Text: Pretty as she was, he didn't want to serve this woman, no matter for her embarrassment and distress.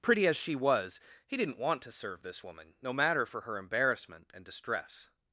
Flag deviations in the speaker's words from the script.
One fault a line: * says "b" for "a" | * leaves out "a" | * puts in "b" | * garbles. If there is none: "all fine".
all fine